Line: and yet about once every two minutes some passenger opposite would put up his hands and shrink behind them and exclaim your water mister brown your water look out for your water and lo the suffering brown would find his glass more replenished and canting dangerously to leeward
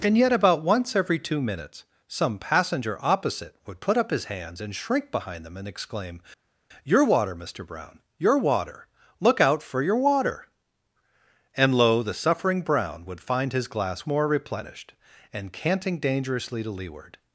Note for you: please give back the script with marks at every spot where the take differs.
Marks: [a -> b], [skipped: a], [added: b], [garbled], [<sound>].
and yet about once every two minutes some passenger opposite would put up his hands and shrink behind them and exclaim your water mister brown your water look out for your water and lo the suffering brown would find his glass more replenished and canting dangerously to leeward